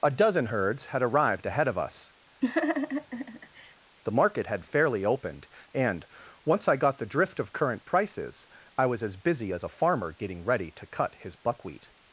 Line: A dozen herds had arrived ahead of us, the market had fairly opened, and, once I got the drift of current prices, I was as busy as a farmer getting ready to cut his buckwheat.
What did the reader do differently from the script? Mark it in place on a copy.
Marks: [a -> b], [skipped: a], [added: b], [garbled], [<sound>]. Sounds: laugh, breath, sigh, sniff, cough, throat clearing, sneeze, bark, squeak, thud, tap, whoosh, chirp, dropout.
A dozen herds had arrived ahead of us, [laugh] the market had fairly opened, and, once I got the drift of current prices, I was as busy as a farmer getting ready to cut his buckwheat.